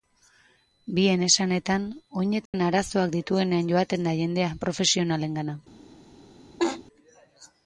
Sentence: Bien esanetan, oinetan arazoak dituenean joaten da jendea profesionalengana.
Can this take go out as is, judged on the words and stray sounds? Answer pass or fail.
fail